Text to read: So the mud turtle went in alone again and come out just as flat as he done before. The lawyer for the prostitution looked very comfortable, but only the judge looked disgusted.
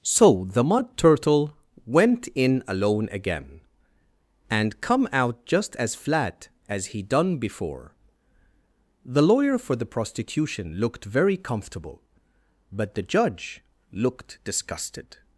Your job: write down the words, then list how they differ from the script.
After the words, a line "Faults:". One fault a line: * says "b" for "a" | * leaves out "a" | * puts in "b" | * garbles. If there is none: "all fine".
So the mud turtle went in alone again and come out just as flat as he done before. The lawyer for the prostitution looked very comfortable, but the judge looked disgusted.
Faults:
* leaves out "only"